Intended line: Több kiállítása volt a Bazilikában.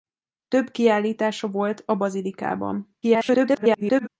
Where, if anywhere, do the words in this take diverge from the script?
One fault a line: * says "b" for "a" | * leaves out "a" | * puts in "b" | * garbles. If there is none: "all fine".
* garbles